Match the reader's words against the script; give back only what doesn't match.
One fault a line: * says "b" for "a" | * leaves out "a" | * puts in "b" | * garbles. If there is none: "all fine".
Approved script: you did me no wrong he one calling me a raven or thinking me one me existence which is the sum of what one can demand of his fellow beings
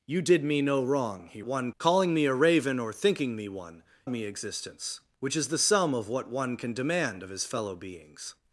all fine